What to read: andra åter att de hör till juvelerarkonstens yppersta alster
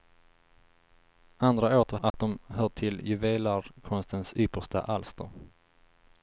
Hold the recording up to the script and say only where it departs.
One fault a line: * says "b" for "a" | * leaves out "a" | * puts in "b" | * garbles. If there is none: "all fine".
all fine